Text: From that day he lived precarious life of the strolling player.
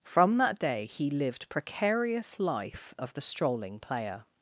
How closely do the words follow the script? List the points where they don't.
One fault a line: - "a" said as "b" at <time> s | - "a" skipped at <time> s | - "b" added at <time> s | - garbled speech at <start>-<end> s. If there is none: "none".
none